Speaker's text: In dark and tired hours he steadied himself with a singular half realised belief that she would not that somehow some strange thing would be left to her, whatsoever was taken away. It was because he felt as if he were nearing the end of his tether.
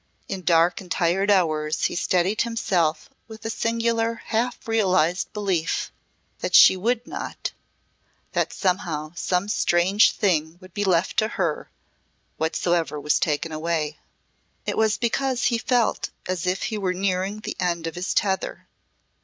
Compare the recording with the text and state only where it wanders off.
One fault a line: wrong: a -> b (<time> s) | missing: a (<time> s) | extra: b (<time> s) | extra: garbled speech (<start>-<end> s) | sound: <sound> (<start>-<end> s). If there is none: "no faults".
no faults